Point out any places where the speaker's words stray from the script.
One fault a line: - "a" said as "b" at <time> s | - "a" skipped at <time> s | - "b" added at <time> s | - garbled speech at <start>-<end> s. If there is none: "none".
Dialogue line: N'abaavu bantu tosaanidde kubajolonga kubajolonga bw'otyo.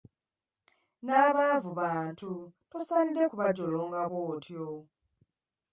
- "kubajolonga" skipped at 4.0 s